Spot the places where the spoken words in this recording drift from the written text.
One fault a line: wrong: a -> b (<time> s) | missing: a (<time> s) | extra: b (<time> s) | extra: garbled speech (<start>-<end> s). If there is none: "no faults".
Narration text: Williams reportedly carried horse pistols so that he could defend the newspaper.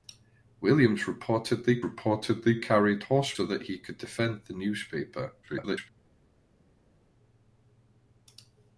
extra: reportedly (1.8 s)
missing: pistols (3.3 s)
extra: garbled speech (5.4-5.9 s)